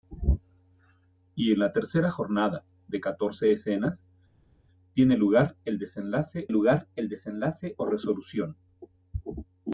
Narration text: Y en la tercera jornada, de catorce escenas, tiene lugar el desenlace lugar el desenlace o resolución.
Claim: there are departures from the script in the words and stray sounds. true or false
false